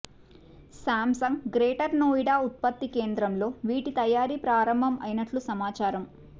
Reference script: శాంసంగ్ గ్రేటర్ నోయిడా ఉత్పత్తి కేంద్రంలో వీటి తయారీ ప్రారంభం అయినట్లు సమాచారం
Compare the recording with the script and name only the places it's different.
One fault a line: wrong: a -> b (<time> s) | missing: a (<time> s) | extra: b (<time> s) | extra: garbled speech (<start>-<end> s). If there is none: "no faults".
no faults